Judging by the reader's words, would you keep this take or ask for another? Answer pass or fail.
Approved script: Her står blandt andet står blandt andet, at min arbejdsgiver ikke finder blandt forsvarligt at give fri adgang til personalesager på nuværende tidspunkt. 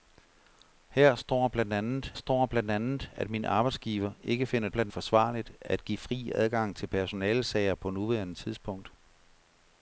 pass